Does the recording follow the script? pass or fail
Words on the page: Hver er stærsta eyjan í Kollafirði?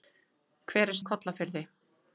fail